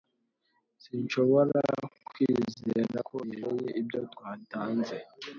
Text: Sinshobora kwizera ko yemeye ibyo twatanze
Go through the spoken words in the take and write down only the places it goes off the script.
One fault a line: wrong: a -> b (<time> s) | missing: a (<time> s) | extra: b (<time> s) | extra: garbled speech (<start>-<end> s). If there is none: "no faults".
no faults